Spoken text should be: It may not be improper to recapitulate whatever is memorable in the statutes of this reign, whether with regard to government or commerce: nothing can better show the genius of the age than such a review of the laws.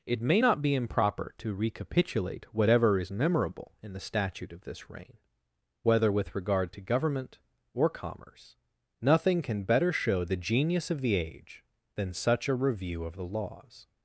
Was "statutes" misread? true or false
true